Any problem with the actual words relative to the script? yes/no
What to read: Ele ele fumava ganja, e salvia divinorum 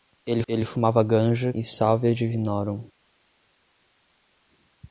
no